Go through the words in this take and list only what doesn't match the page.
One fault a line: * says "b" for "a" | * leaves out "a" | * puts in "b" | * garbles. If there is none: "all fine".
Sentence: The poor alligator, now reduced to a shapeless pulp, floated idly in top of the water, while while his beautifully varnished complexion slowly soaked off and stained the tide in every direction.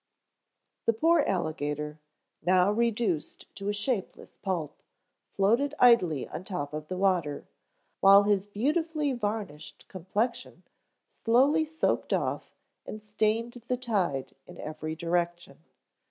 * says "on" for "in"
* leaves out "while"